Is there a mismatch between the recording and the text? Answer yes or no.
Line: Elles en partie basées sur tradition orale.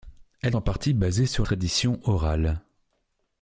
no